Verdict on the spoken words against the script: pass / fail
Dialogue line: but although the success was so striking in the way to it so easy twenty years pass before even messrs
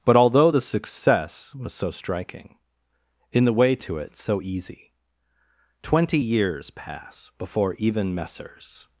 pass